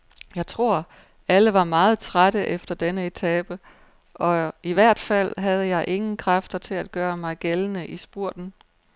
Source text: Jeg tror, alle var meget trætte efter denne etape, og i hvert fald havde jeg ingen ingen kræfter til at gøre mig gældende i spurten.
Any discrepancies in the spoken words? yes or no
yes